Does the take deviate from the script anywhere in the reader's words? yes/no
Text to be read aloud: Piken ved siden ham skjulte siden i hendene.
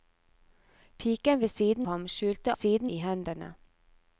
no